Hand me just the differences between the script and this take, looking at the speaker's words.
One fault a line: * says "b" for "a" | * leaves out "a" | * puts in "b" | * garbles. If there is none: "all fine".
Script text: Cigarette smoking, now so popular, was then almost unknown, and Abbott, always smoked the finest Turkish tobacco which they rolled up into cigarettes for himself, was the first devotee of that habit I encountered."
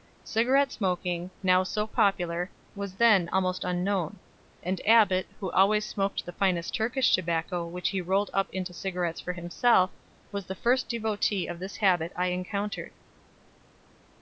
* puts in "who"
* says "he" for "they"
* says "this" for "that"